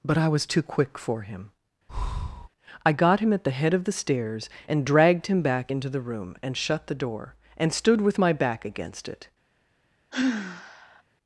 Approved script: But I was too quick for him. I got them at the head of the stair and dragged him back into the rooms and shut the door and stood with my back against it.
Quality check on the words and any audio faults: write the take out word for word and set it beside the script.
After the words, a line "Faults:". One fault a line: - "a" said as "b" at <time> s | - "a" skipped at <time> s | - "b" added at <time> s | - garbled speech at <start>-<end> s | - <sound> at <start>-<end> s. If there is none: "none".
But I was too quick for him. I got him at the head of the stairs and dragged him back into the room and shut the door and stood with my back against it.
Faults:
- breath at 1.9-2.5 s
- "them" said as "him" at 3.2 s
- "stair" said as "stairs" at 3.9 s
- "rooms" said as "room" at 6.0 s
- sigh at 10.1-11.0 s